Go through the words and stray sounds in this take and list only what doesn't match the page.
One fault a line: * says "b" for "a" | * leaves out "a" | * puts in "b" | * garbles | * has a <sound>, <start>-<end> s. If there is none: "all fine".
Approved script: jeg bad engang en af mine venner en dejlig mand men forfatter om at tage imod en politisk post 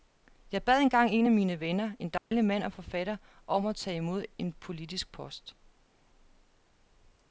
* has a dropout, 2.2-2.3 s
* says "og" for "men"